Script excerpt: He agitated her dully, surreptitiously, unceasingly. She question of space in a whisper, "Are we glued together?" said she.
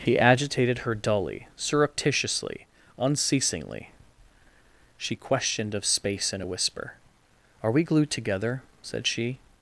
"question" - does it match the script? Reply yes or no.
no